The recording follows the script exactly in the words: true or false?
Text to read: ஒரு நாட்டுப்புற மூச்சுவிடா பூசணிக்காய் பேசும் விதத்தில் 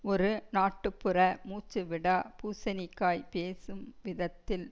true